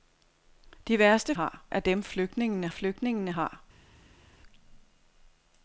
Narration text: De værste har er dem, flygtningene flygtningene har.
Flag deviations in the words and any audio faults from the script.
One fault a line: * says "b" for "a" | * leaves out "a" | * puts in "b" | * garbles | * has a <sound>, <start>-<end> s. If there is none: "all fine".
all fine